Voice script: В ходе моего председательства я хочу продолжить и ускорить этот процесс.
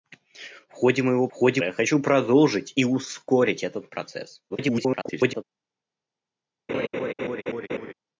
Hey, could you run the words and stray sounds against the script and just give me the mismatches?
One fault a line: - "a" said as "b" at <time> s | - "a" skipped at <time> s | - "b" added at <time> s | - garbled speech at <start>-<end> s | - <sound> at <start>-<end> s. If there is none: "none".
- "председательства" said as "ходе" at 1.3 s
- garbled speech at 4.5-5.4 s
- laugh at 6.7-7.9 s